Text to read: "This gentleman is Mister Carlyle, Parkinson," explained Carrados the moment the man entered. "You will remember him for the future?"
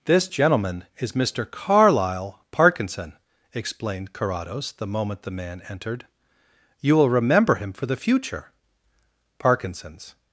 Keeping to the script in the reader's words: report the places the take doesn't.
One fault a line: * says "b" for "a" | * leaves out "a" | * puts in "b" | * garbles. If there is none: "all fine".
* puts in "Parkinson's"